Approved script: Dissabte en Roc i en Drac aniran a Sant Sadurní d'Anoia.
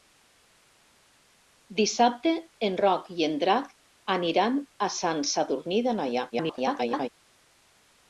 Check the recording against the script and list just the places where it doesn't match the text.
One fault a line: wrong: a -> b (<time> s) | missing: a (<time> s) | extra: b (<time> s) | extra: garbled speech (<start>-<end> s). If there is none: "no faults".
extra: garbled speech (6.3-7.1 s)